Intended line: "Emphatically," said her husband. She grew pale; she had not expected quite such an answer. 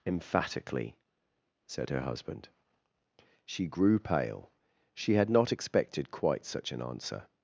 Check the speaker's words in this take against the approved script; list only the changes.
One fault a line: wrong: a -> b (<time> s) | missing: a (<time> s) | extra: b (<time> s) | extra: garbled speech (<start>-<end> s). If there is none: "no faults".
no faults